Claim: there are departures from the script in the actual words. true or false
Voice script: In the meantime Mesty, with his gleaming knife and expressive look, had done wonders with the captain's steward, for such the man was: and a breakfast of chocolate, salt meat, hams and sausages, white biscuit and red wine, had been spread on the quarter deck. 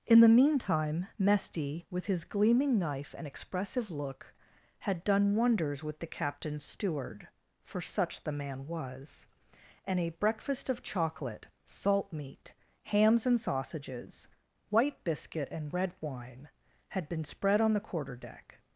false